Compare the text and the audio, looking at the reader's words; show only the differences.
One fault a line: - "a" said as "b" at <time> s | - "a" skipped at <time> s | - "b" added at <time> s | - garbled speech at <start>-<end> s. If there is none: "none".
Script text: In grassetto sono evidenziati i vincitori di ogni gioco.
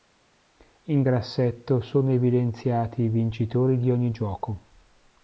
none